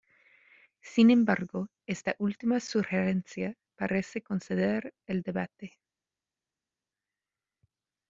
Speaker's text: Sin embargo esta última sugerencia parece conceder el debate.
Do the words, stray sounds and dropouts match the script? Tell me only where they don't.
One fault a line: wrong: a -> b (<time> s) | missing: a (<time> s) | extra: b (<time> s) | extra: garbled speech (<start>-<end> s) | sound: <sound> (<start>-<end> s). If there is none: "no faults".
no faults